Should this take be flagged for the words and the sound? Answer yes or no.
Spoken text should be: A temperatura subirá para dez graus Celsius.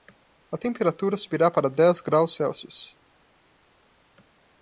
no